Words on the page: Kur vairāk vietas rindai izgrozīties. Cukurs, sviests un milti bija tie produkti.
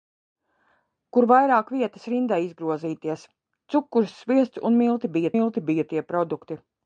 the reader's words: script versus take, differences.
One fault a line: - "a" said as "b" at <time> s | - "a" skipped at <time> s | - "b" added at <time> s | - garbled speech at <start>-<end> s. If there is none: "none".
- "milti bija" added at 5.3 s